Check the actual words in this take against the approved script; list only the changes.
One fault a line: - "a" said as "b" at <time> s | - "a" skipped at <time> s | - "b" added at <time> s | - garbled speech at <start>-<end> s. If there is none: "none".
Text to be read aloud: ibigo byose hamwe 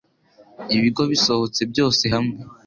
- "bisohotse" added at 1.1 s